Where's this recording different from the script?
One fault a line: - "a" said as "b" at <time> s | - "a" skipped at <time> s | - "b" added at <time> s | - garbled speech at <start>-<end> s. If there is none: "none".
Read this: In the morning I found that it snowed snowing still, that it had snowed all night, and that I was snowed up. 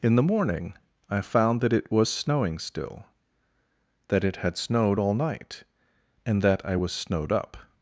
- "snowed" said as "was" at 1.9 s